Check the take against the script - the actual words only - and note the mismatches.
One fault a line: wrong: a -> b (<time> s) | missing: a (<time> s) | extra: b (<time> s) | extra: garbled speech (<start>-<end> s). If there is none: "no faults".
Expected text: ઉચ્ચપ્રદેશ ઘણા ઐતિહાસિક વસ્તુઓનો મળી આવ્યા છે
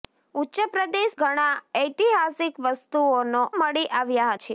no faults